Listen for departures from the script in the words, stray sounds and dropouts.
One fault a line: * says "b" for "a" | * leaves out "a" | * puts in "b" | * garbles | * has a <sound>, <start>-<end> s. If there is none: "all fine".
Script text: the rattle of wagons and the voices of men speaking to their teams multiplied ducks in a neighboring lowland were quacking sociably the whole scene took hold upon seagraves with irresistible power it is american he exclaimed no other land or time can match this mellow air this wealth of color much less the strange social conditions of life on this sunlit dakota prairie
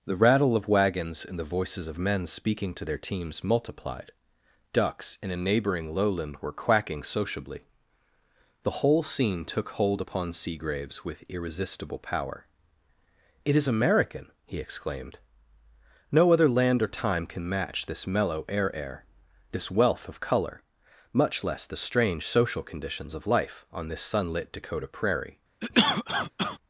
* puts in "air"
* has a cough, 25.6-26.6 s